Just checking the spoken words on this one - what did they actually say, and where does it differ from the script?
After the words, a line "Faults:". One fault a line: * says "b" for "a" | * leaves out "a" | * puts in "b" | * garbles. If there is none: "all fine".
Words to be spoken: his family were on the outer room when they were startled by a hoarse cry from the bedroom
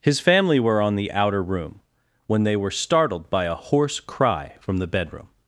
his family were on the outer room when they were startled by a hoarse cry from the bedroom
Faults:
all fine